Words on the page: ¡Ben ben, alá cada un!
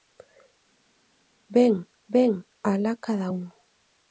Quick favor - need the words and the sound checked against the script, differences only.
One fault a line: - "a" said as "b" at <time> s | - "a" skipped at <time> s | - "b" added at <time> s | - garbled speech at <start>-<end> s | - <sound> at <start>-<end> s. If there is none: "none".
none